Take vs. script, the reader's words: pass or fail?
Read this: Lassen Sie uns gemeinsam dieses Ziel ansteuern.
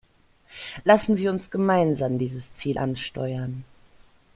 pass